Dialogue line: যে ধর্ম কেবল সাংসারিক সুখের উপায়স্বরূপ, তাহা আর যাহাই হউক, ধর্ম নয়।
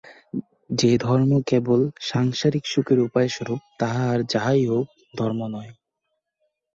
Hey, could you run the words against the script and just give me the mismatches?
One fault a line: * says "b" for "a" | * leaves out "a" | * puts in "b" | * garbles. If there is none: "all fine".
all fine